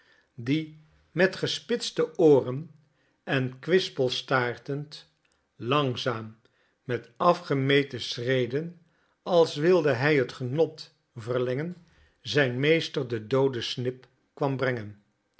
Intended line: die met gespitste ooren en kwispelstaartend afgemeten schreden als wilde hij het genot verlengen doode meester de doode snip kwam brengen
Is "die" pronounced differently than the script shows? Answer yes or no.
no